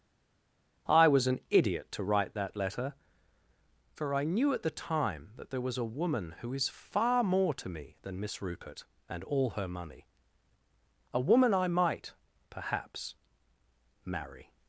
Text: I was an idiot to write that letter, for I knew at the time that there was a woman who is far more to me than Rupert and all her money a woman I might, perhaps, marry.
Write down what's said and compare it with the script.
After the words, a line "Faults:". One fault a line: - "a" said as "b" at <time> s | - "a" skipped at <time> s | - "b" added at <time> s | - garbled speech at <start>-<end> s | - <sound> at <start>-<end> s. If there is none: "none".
I was an idiot to write that letter, for I knew at the time that there was a woman who is far more to me than Miss Rupert and all her money a woman I might, perhaps, marry.
Faults:
- "Miss" added at 8.2 s